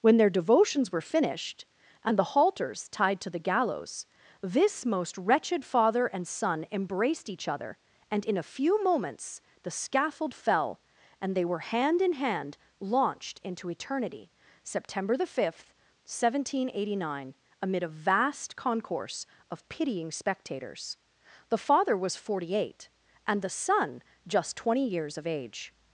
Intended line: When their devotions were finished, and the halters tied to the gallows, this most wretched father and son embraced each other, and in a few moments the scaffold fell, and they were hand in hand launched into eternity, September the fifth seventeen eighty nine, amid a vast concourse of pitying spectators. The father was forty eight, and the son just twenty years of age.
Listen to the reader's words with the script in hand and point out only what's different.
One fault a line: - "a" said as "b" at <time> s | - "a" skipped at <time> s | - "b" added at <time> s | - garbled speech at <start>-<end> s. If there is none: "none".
none